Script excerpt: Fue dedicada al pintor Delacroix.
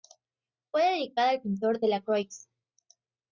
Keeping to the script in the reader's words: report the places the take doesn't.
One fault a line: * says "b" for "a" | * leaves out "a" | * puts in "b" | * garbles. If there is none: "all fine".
all fine